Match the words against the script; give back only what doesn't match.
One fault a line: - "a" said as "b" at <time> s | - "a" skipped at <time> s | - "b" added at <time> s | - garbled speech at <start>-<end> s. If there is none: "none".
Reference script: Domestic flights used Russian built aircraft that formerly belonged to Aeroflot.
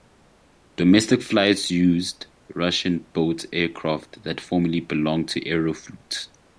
none